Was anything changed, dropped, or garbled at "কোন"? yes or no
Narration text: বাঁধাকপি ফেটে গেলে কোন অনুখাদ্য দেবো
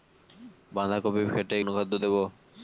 yes